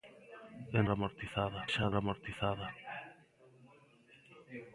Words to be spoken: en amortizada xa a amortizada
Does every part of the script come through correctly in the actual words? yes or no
yes